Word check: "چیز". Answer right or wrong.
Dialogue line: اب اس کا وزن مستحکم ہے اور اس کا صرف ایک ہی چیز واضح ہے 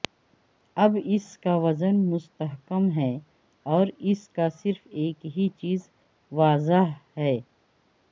right